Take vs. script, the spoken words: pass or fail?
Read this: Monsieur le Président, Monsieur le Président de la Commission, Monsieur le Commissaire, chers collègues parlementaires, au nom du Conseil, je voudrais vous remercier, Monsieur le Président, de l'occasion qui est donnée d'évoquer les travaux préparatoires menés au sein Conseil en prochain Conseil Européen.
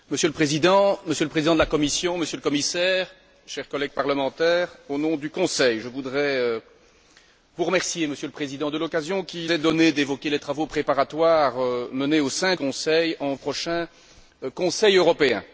pass